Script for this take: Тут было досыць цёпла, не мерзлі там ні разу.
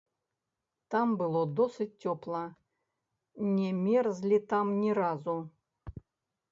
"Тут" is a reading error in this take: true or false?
true